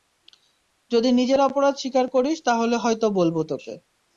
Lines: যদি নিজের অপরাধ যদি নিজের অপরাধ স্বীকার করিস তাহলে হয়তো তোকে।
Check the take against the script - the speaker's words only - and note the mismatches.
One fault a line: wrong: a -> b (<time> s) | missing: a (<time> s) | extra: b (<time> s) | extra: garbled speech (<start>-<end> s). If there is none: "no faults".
missing: যদি নিজের অপরাধ (1.7 s)
extra: বলব (3.2 s)